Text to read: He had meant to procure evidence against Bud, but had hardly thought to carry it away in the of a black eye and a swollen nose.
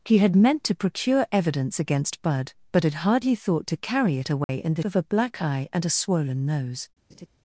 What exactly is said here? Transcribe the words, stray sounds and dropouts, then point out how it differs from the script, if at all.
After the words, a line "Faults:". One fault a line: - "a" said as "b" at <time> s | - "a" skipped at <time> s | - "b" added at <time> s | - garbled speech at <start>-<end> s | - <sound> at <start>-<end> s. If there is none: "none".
He had meant to procure evidence against Bud, but had hardly thought to carry it away in the of a black eye and a swollen nose.
Faults:
- dropout at 4.4-4.5 s
- laugh at 7.1-7.3 s